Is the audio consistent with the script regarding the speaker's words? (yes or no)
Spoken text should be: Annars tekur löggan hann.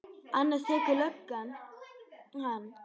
yes